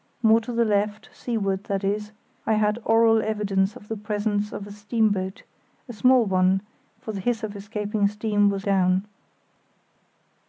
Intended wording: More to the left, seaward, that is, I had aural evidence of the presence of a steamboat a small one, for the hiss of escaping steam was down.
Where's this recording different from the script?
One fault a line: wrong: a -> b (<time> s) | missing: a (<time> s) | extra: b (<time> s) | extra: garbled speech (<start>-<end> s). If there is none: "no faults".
no faults